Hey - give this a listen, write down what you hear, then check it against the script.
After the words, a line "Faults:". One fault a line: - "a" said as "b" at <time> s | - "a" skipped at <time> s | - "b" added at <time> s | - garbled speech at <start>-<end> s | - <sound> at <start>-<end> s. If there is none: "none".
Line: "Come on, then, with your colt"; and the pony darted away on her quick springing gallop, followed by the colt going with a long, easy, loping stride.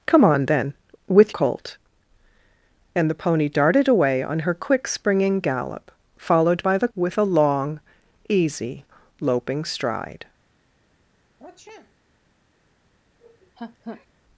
"Come on, then, with colt"; and the pony darted away on her quick springing gallop, followed by the with a long, easy, loping stride.
Faults:
- "your" skipped at 1.3 s
- "colt going" skipped at 6.9 s
- sniff at 11.4-12.0 s
- laugh at 13.2-14.1 s